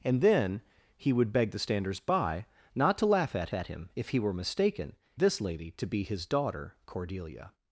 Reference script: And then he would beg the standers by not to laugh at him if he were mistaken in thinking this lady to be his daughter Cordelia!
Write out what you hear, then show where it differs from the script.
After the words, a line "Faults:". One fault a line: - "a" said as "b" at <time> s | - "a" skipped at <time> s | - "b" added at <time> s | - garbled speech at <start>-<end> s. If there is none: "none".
And then he would beg the standers by not to laugh at at him if he were mistaken this lady to be his daughter Cordelia!
Faults:
- "at" added at 3.5 s
- "in thinking" skipped at 5.0 s